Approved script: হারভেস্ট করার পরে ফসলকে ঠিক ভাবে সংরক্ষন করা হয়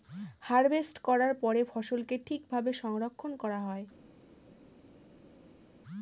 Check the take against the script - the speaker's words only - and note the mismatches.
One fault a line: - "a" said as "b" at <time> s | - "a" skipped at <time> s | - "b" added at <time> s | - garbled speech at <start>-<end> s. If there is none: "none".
none